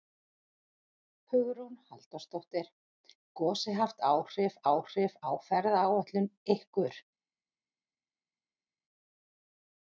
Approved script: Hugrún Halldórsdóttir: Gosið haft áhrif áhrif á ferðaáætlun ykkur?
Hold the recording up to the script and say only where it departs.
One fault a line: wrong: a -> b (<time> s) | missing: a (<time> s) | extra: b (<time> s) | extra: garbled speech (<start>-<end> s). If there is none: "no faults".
no faults